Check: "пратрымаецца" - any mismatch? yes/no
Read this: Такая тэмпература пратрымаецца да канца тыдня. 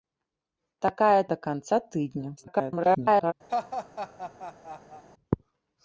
yes